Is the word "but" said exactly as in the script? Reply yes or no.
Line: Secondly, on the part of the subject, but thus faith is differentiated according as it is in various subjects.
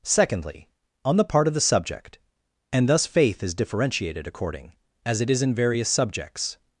no